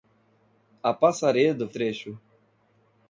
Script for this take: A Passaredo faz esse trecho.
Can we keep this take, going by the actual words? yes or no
no